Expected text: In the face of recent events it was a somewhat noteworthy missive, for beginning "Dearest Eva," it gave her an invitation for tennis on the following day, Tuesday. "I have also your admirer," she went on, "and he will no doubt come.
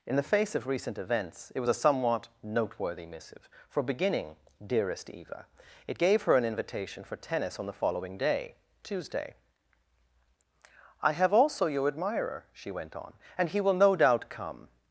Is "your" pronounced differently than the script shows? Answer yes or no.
no